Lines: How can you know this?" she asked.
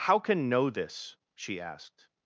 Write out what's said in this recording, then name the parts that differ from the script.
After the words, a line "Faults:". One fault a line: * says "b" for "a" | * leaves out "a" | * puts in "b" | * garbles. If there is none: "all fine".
How can know this?" she asked.
Faults:
* leaves out "you"